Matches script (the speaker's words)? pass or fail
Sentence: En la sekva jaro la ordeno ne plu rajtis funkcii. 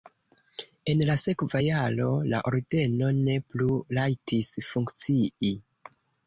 pass